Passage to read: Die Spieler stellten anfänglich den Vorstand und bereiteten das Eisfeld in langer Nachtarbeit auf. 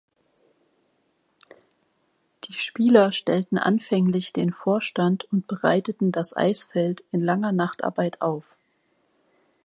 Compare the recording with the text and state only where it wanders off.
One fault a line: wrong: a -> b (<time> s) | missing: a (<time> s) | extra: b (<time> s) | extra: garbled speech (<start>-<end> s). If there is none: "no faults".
no faults